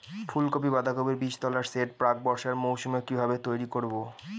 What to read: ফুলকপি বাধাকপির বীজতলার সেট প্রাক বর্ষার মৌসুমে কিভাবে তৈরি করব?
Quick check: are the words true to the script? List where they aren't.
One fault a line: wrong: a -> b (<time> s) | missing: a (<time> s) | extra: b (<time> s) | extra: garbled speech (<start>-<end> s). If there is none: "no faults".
no faults